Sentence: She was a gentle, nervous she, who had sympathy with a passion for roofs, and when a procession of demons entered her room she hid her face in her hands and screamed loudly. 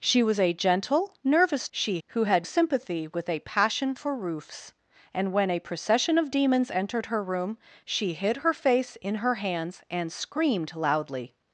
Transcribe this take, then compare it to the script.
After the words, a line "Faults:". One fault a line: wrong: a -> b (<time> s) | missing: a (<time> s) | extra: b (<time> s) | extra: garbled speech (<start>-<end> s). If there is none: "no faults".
She was a gentle, nervous she, who had sympathy with a passion for roofs, and when a procession of demons entered her room she hid her face in her hands and screamed loudly.
Faults:
no faults